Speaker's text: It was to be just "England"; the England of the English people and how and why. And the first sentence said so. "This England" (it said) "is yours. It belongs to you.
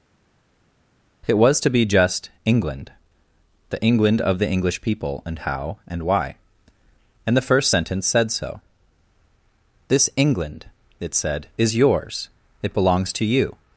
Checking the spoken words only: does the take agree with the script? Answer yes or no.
yes